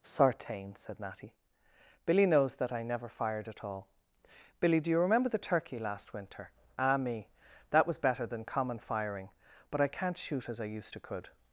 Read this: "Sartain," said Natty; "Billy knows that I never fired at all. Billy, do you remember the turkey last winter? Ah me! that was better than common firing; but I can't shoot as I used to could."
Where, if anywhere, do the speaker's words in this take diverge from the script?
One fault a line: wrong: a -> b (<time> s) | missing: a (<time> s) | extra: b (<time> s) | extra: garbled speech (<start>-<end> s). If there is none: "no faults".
no faults